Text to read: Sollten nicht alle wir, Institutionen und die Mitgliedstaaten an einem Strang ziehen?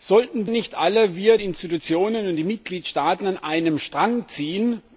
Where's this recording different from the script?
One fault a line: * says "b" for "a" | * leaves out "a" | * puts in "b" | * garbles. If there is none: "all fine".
all fine